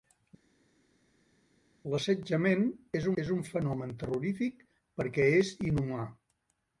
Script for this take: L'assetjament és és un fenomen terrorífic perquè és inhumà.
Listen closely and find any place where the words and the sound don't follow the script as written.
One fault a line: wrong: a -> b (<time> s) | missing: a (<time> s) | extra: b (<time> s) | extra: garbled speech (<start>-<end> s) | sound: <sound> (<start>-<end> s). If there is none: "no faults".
no faults